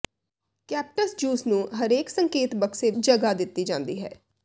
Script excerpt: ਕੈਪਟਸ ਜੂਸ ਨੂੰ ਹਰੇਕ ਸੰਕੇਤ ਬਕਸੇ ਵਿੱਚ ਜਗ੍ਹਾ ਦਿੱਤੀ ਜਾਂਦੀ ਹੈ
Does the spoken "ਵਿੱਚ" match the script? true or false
false